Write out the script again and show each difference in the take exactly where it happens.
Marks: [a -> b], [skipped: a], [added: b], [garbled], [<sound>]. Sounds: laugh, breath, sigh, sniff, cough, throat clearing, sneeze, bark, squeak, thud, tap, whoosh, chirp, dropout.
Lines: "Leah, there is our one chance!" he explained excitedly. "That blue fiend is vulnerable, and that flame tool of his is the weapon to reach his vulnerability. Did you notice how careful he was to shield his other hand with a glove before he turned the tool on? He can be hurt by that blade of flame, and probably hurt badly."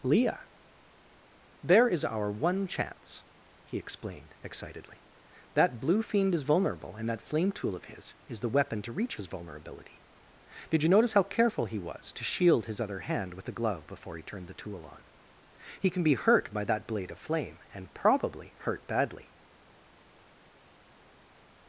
"Leah, there is our one chance!" he explained excitedly. "That blue fiend is vulnerable, and that flame tool of his is the weapon to reach his vulnerability. Did you notice how careful he was to shield his other hand with a glove before he turned the tool on? He can be hurt by that blade of flame, and probably hurt badly."